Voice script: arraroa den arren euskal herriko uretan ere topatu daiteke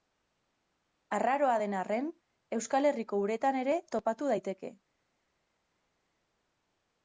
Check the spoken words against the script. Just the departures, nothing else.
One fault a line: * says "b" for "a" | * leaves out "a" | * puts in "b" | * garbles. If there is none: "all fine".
all fine